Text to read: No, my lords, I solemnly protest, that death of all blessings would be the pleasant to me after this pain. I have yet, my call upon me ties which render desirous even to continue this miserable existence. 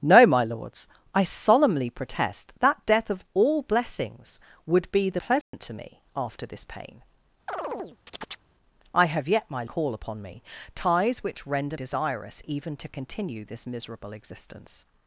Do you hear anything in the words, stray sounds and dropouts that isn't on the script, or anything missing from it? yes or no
yes